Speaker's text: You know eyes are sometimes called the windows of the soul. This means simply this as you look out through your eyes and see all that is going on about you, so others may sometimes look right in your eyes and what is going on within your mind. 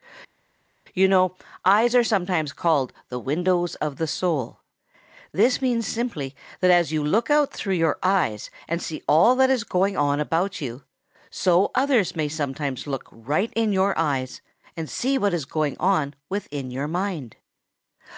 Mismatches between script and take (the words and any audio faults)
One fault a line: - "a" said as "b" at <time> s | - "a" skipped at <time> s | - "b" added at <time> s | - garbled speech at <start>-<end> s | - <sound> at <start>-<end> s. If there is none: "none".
- "this" said as "that" at 6.6 s
- "see" added at 14.9 s